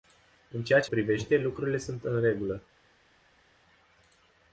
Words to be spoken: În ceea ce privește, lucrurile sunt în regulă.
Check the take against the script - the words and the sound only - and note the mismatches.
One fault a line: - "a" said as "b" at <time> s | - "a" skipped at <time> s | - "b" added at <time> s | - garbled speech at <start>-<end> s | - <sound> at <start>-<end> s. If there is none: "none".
none